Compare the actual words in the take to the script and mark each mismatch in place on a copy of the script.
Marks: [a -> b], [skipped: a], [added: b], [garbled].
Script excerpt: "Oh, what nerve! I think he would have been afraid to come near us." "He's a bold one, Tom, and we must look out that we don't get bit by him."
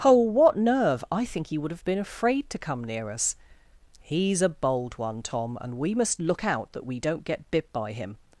"Oh, what nerve! I think he would have been afraid to come near us." "He's a bold one, Tom, and we must look out that we don't get bit by him."